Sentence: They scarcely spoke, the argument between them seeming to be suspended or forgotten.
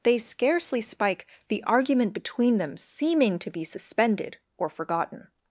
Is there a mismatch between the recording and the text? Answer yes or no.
yes